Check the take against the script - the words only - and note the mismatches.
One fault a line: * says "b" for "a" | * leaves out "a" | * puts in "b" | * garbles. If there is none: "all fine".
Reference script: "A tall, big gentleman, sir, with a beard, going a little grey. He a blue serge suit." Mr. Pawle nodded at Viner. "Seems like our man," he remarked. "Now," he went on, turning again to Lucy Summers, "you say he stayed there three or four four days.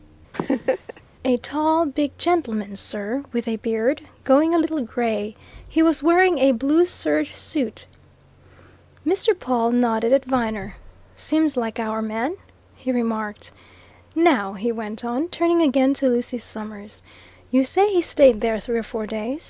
* puts in "was wearing"
* leaves out "four"